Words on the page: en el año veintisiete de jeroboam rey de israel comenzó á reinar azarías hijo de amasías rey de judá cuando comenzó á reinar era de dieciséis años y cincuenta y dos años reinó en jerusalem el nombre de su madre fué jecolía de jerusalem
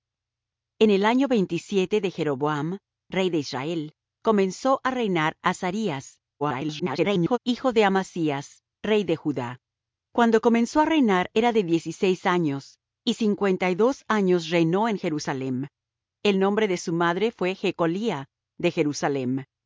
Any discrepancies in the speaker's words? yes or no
yes